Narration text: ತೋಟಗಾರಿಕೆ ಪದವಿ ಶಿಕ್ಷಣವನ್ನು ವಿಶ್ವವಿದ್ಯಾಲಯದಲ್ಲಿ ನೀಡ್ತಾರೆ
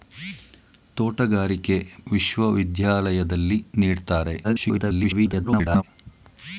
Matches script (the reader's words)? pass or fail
fail